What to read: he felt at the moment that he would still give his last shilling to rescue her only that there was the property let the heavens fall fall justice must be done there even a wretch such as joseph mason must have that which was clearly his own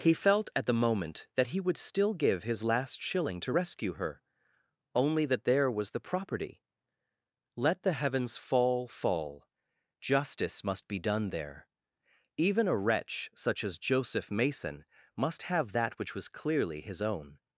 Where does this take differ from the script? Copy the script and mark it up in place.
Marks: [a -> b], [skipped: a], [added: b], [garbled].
he felt at the moment that he would still give his last shilling to rescue her only that there was the property let the heavens fall fall justice must be done there even a wretch such as joseph mason must have that which was clearly his own